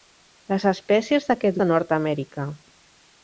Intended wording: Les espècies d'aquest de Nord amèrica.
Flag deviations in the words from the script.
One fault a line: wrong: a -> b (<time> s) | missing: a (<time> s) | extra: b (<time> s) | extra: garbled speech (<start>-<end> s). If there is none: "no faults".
no faults